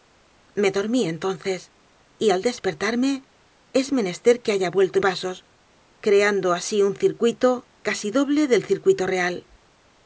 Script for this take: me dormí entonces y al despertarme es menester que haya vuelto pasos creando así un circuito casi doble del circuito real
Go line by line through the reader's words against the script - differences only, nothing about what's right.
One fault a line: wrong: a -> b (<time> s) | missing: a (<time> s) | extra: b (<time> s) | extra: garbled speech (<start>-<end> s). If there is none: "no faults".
no faults